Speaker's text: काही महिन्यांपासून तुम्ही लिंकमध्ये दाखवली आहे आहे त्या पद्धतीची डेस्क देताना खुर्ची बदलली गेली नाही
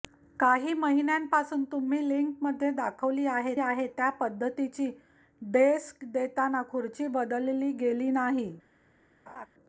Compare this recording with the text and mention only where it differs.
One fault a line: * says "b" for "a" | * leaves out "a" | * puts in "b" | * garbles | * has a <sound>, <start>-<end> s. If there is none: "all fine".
* has a laugh, 9.3-9.5 s